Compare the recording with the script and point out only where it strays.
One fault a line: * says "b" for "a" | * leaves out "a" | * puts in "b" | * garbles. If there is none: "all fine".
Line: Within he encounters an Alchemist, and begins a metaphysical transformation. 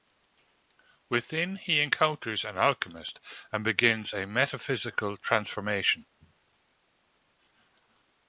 all fine